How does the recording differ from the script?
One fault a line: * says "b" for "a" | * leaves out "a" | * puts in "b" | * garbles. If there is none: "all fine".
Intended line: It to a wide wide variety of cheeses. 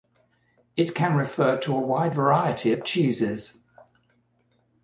* puts in "can refer"
* leaves out "wide"